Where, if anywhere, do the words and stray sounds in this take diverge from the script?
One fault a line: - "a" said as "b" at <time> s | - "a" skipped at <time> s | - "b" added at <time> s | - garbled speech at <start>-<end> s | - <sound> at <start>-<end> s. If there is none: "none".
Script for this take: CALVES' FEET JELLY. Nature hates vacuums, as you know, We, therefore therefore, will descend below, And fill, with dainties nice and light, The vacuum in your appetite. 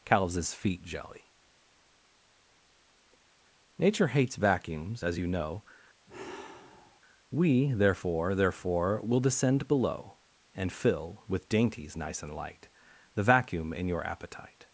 - sigh at 6.1-7.0 s